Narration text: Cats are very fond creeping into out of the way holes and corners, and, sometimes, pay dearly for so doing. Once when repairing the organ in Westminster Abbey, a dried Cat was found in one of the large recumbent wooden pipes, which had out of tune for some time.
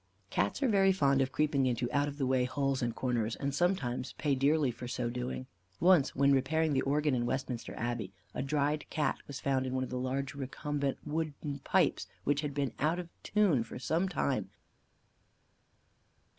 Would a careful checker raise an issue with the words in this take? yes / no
yes